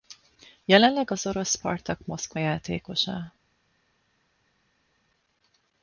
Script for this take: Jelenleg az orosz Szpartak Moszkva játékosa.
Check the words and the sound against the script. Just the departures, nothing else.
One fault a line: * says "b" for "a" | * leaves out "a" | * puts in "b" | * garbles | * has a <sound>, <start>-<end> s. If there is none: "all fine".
all fine